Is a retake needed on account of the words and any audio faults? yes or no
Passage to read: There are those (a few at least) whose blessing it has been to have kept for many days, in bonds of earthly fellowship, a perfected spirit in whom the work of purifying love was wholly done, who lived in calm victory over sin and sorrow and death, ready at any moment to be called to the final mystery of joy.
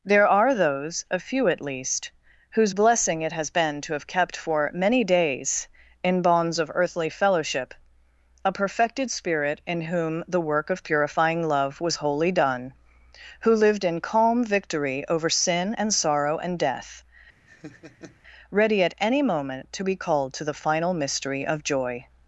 yes